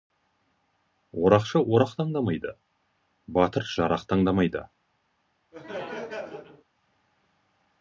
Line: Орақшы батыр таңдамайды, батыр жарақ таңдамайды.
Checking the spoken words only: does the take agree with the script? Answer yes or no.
no